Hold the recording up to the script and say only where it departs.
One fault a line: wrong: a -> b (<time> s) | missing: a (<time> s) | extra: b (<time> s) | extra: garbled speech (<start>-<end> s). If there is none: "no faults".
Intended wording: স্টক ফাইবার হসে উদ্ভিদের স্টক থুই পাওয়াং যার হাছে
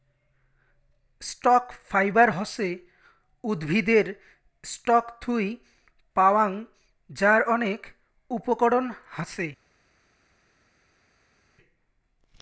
extra: অনেক উপকরণ (7.5 s)